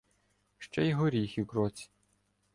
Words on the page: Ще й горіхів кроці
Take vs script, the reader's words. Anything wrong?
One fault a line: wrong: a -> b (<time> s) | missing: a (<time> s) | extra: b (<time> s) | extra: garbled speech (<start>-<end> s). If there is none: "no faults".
no faults